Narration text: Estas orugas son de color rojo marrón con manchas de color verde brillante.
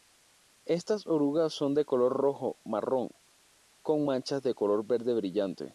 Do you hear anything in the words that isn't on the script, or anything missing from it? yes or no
no